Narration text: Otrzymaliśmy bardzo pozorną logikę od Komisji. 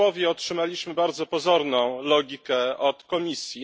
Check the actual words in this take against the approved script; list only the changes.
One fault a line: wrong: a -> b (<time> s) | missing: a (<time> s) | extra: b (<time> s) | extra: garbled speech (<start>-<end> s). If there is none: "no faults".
no faults